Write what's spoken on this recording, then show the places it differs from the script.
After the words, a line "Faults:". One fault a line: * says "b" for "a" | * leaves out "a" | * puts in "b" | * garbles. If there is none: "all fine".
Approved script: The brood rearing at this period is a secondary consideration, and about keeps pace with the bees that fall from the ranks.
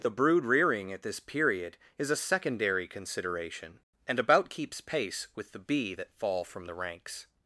The brood rearing at this period is a secondary consideration, and about keeps pace with the bee that fall from the ranks.
Faults:
* says "bee" for "bees"